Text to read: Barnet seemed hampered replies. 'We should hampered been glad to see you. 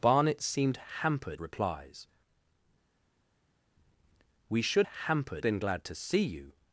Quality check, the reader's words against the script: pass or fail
pass